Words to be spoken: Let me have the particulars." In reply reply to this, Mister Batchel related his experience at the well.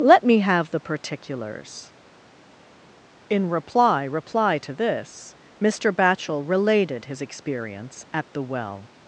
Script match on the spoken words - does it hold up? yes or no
yes